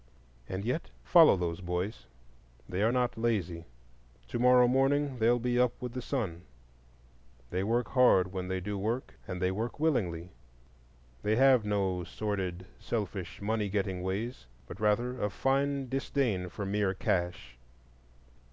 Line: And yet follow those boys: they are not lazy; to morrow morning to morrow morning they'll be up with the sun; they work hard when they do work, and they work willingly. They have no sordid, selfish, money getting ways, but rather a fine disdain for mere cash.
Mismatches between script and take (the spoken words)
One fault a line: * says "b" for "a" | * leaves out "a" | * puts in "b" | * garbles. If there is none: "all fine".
* leaves out "to morrow morning"